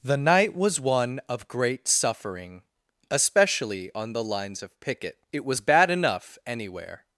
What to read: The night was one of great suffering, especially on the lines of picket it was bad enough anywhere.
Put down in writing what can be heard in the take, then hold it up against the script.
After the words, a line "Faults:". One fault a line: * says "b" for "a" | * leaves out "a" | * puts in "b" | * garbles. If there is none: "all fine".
The night was one of great suffering, especially on the lines of picket it was bad enough anywhere.
Faults:
all fine